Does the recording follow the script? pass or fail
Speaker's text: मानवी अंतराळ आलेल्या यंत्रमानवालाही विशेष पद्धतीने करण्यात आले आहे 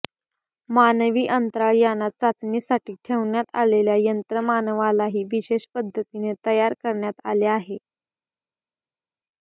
fail